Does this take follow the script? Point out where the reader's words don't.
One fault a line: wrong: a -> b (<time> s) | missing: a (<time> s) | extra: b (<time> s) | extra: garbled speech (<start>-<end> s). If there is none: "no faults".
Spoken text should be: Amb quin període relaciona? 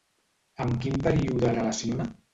no faults